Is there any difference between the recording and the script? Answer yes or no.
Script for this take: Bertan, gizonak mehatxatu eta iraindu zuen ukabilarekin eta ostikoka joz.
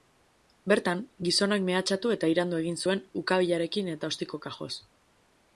yes